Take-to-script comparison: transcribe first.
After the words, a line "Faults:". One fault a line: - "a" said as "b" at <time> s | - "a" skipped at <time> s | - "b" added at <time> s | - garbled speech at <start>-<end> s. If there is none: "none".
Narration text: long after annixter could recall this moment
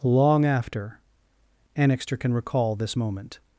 long after annixter can recall this moment
Faults:
- "could" said as "can" at 2.2 s